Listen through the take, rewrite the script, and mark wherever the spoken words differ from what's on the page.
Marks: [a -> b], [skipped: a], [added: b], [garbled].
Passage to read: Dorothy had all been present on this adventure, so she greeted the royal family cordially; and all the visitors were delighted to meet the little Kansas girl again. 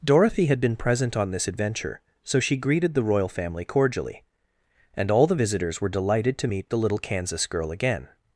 Dorothy had [skipped: all] been present on this adventure, so she greeted the royal family cordially; and all the visitors were delighted to meet the little Kansas girl again.